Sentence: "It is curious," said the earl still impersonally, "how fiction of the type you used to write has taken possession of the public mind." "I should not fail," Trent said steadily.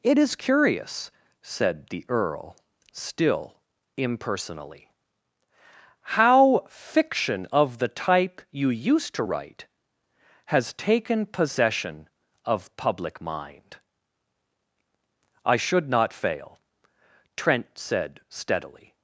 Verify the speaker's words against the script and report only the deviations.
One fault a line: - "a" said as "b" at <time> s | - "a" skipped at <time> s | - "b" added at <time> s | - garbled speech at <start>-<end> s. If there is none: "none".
- "the" skipped at 12.8 s